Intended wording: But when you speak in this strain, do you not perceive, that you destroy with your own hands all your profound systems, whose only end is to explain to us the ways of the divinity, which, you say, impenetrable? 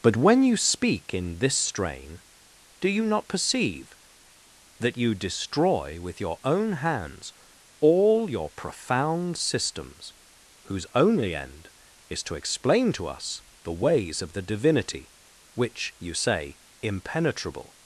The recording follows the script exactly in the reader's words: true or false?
true